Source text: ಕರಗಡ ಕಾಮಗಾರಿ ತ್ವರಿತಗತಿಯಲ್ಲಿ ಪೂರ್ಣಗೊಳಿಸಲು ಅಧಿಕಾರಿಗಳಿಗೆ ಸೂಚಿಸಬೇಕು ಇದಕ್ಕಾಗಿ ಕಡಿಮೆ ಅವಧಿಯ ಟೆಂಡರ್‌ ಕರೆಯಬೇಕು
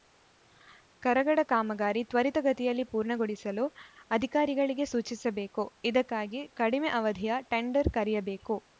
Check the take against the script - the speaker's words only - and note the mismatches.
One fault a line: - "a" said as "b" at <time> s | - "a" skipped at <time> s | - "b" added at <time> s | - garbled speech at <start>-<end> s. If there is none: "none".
none